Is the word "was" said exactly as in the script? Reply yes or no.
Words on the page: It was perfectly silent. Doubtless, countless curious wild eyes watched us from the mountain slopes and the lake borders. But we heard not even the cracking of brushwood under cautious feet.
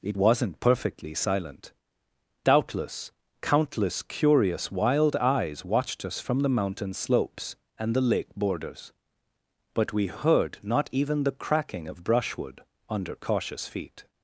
no